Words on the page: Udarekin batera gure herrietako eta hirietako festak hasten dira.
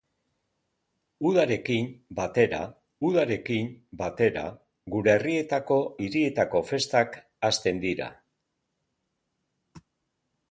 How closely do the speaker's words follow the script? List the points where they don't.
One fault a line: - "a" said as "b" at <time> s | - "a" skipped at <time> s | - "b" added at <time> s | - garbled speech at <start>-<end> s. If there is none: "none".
- "udarekin batera" added at 3.1 s
- "eta" skipped at 5.8 s